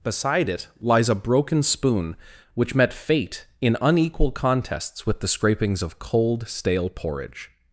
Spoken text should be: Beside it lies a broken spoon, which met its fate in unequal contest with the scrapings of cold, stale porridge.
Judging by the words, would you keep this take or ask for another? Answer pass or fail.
fail